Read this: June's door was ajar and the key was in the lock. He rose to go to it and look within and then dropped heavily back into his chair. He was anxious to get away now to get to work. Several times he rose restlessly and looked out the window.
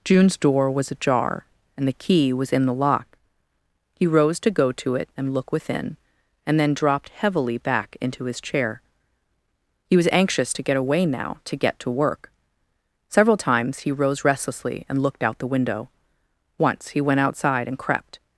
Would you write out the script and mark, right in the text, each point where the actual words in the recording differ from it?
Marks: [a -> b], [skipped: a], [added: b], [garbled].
June's door was ajar and the key was in the lock. He rose to go to it and look within and then dropped heavily back into his chair. He was anxious to get away now to get to work. Several times he rose restlessly and looked out the window. [added: Once he went outside and crept]